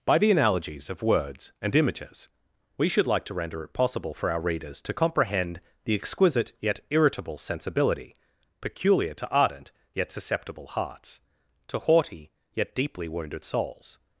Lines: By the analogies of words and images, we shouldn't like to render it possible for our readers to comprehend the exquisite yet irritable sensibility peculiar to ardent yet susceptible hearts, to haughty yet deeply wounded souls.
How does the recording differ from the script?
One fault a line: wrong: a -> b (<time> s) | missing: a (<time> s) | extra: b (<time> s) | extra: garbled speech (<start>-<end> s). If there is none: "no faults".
wrong: shouldn't -> should (2.9 s)